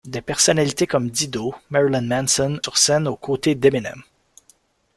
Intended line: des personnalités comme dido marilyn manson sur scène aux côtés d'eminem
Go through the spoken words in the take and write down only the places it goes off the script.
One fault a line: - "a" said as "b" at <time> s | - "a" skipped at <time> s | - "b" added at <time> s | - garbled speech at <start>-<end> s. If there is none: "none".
none